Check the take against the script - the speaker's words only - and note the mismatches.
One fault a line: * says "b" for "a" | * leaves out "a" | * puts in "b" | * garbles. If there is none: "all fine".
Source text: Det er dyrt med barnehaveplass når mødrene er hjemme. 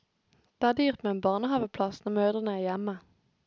* puts in "en"